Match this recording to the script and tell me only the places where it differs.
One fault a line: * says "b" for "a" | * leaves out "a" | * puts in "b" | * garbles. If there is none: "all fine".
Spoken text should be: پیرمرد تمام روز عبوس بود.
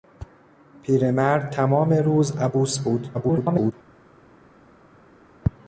* garbles